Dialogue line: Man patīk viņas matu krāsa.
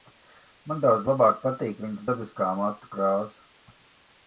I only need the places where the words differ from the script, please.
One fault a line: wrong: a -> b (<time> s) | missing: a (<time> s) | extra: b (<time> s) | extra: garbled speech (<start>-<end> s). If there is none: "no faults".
extra: daudz labāk (0.8 s)
extra: dabiskā (2.1 s)